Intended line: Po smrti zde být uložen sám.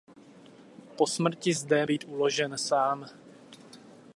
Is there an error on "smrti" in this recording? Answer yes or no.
no